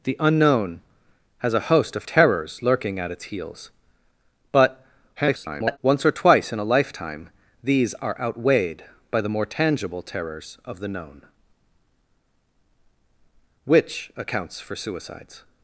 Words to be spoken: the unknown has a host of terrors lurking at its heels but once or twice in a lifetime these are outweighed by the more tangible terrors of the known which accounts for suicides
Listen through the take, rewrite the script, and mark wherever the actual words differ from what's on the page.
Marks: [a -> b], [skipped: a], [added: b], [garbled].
the unknown has a host of terrors lurking at its heels but [garbled] once or twice in a lifetime these are outweighed by the more tangible terrors of the known which accounts for suicides